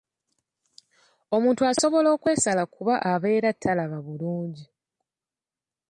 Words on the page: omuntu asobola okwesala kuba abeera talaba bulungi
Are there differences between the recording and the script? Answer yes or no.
no